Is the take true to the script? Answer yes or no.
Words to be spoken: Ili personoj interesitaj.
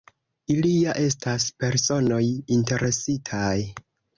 no